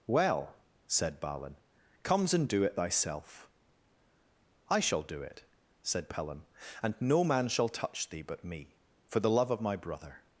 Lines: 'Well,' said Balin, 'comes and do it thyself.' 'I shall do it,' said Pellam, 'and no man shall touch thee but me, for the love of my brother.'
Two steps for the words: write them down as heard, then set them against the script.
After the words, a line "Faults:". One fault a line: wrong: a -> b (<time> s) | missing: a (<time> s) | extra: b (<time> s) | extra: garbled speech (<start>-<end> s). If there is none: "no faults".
'Well,' said Balin, 'comes and do it thyself.' 'I shall do it,' said Pellam, 'and no man shall touch thee but me, for the love of my brother.'
Faults:
no faults